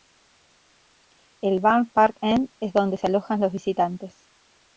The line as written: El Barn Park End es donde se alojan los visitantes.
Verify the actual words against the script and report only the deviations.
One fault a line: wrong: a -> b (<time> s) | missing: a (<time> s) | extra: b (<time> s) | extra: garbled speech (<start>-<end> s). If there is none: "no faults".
no faults